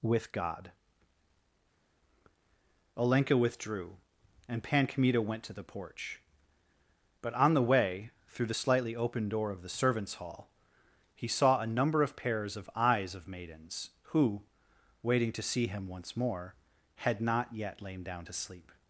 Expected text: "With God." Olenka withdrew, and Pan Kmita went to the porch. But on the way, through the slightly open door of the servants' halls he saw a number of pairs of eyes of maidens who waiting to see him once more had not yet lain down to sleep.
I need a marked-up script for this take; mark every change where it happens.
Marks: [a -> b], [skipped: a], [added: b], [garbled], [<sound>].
"With God." Olenka withdrew, and Pan Kmita went to the porch. But on the way, through the slightly open door of the servants' [halls -> hall] he saw a number of pairs of eyes of maidens who waiting to see him once more had not yet lain down to sleep.